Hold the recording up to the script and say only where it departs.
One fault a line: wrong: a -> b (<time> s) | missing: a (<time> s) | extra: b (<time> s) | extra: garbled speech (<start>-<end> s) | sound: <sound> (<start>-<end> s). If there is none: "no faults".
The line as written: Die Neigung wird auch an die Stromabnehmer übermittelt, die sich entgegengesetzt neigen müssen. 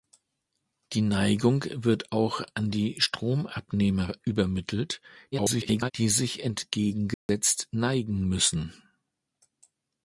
extra: garbled speech (5.3-5.9 s)
sound: dropout (7.1-7.3 s)